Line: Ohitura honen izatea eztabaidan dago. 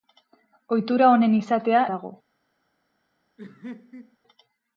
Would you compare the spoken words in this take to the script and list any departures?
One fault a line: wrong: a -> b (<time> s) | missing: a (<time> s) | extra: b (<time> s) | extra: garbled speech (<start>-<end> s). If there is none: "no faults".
missing: eztabaidan (1.8 s)